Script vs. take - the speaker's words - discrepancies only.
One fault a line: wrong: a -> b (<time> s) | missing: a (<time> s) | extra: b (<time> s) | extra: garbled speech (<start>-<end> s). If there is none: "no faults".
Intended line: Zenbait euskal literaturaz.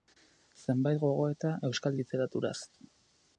extra: gogoeta (1.0 s)